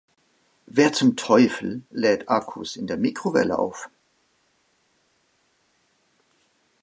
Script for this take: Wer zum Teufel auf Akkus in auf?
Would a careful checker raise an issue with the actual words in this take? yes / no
yes